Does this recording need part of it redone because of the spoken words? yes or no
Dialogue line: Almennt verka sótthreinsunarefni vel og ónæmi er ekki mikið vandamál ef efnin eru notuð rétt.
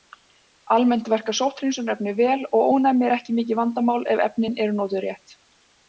no